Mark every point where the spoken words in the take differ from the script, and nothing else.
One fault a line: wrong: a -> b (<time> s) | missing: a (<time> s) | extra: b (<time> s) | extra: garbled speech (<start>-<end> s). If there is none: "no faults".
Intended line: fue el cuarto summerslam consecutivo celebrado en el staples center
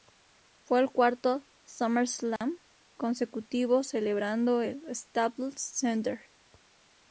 no faults